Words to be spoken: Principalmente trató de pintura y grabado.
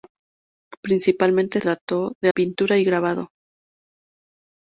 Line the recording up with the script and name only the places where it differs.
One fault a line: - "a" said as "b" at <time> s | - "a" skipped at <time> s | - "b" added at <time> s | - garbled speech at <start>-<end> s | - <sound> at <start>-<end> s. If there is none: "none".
none